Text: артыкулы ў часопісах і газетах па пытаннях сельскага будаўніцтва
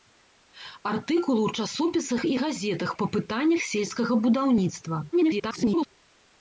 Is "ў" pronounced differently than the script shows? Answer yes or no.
no